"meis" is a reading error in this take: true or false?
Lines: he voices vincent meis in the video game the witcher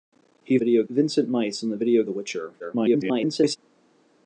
false